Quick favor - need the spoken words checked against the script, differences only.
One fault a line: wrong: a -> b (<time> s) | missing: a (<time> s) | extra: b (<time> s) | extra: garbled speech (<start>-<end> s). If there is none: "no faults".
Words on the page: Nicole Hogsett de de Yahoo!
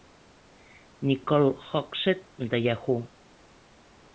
missing: de (2.6 s)